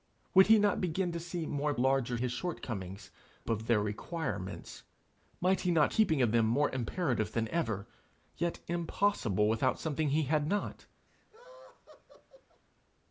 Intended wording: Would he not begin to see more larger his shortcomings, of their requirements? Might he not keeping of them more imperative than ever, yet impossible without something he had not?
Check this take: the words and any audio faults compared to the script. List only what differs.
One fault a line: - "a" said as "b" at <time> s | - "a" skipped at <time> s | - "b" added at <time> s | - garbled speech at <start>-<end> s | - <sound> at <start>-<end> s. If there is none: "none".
- laugh at 11.1-12.6 s